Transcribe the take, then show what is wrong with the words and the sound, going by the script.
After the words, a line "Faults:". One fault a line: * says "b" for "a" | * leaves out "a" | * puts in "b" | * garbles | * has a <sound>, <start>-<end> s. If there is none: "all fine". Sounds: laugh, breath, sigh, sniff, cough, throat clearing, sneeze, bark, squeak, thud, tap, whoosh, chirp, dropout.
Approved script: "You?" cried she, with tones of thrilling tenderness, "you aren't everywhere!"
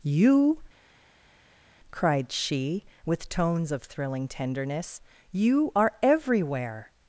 "You?" cried she, with tones of thrilling tenderness, "you are everywhere!"
Faults:
* says "are" for "aren't"